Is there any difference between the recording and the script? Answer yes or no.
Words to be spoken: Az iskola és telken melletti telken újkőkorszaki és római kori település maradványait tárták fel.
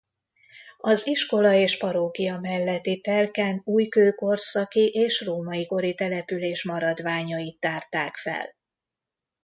yes